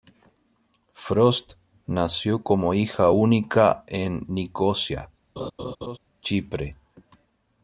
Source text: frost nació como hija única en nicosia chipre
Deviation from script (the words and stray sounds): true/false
true